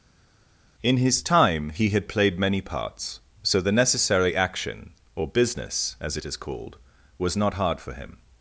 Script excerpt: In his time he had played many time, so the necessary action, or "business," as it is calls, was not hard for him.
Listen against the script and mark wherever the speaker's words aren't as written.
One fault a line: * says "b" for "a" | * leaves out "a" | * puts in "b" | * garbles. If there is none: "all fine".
* says "parts" for "time"
* says "called" for "calls"